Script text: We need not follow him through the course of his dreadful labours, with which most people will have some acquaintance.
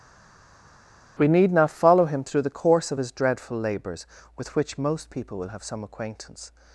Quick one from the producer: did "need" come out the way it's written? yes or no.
yes